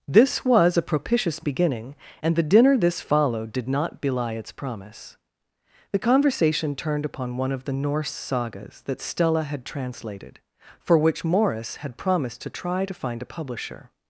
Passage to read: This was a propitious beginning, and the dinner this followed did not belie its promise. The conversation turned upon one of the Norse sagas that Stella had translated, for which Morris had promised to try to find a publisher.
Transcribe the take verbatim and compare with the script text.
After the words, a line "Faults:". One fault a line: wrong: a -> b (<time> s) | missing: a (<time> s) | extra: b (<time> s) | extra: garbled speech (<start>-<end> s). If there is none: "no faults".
This was a propitious beginning, and the dinner this followed did not belie its promise. The conversation turned upon one of the Norse sagas that Stella had translated, for which Morris had promised to try to find a publisher.
Faults:
no faults